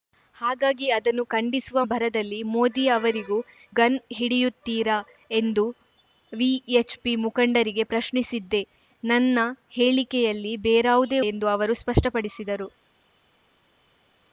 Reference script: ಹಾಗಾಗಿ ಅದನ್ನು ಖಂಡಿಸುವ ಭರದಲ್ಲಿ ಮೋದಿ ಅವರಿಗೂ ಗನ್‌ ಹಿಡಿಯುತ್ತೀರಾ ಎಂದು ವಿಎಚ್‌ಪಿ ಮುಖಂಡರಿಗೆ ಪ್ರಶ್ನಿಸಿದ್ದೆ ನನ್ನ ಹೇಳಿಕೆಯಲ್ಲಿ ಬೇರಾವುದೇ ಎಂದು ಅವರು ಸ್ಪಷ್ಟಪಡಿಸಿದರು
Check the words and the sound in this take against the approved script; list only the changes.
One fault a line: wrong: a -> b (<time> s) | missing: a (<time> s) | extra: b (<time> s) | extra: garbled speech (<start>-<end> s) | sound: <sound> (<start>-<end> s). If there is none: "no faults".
no faults